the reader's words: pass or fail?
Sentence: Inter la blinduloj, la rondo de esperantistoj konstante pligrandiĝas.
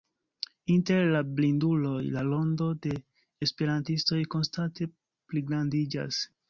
pass